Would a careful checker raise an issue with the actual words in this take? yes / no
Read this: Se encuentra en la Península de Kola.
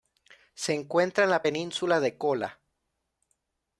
no